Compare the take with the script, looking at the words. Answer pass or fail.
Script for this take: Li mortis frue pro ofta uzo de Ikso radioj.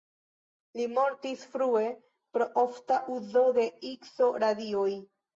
pass